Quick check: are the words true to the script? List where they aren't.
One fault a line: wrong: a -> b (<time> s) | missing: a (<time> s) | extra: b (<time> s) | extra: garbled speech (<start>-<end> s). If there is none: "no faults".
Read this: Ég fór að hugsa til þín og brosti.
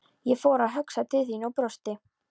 no faults